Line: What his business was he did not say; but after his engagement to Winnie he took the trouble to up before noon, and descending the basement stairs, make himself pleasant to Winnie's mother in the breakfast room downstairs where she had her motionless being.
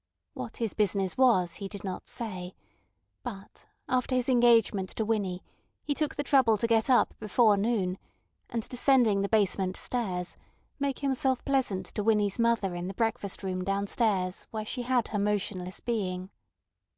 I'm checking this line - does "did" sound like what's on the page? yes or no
yes